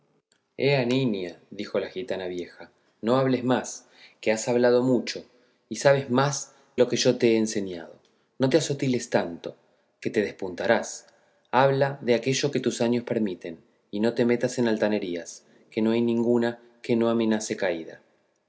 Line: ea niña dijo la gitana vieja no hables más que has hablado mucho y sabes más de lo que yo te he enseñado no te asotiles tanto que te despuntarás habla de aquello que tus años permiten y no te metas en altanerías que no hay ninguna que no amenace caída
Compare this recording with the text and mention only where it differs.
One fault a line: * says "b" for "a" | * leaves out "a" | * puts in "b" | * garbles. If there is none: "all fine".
* leaves out "de"